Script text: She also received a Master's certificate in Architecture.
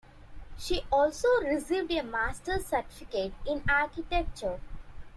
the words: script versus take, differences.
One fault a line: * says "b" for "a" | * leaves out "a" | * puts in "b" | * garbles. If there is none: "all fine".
all fine